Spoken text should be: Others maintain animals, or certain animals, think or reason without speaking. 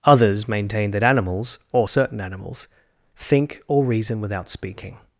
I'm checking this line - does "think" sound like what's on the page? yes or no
yes